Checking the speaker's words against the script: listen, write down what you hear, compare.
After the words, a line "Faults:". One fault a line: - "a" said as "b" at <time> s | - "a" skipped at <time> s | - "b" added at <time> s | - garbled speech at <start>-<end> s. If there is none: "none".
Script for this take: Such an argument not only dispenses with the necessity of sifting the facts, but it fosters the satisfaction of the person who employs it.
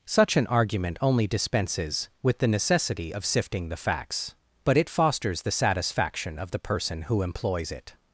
Such an argument only dispenses with the necessity of sifting the facts, but it fosters the satisfaction of the person who employs it.
Faults:
- "not" skipped at 1.0 s